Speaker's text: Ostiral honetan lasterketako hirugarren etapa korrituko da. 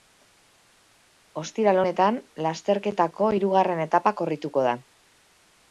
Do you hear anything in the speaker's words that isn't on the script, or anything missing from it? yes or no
no